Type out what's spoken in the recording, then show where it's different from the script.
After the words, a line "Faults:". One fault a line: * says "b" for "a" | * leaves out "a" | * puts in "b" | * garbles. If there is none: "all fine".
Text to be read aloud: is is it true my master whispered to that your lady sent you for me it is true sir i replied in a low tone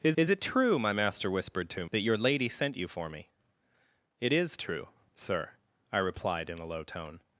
is is it true my master whispered to that your lady sent you for me it is true sir i replied in a low tone
Faults:
all fine